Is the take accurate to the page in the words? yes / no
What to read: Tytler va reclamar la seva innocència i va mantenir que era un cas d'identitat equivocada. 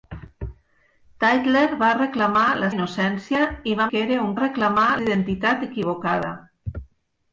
no